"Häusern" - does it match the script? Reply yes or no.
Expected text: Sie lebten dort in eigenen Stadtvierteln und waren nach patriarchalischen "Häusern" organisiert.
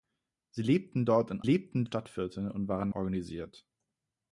no